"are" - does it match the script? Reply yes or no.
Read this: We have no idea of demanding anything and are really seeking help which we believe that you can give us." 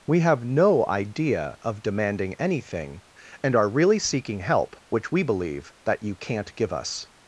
yes